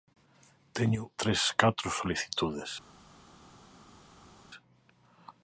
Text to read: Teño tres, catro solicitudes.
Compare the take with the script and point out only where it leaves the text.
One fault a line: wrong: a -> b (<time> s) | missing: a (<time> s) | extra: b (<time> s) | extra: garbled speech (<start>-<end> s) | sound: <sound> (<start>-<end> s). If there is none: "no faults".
no faults